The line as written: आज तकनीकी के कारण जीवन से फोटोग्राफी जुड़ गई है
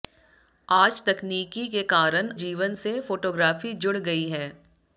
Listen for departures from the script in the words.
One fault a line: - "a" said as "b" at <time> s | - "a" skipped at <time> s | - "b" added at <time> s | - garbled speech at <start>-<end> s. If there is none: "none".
none